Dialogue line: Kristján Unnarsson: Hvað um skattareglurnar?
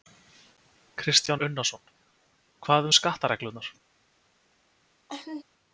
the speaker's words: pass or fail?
pass